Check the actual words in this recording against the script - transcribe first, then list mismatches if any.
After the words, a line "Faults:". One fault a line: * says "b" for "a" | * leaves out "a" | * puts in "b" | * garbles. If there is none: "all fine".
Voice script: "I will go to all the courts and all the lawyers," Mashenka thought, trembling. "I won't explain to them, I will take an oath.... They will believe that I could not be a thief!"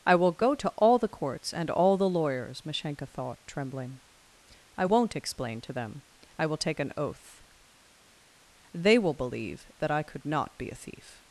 "I will go to all the courts and all the lawyers," Mashenka thought, trembling. "I won't explain to them, I will take an oath.... They will believe that I could not be a thief!"
Faults:
all fine